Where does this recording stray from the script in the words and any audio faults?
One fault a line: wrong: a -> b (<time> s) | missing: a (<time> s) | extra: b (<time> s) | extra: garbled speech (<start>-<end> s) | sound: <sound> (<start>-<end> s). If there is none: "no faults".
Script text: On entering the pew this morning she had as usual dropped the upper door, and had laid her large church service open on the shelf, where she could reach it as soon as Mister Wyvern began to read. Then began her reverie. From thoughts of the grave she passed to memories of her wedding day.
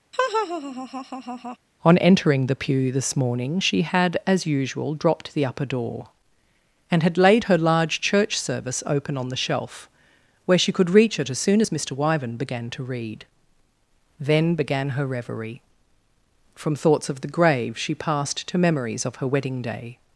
sound: laugh (0.1-1.6 s)